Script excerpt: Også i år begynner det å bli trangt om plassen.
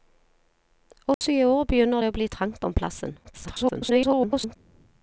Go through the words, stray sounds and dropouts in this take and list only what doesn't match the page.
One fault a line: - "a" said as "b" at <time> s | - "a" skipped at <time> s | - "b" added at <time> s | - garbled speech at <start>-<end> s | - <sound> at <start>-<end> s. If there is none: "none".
- dropout at 1.1-1.2 s
- garbled speech at 3.2-4.6 s